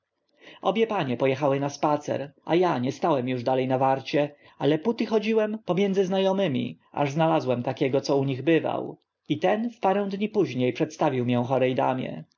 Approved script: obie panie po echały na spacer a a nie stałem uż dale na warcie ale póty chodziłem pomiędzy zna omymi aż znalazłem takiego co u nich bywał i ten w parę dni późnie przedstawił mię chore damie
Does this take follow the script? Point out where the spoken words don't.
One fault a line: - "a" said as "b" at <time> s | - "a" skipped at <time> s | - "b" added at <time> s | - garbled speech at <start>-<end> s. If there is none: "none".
none